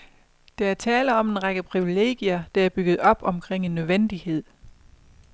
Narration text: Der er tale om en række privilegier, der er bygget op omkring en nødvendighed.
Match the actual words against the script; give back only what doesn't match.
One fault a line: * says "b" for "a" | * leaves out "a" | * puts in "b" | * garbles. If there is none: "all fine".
all fine